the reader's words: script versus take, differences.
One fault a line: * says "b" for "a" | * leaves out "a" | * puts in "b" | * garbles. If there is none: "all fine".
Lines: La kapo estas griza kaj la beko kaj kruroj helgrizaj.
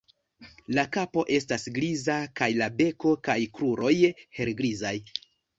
all fine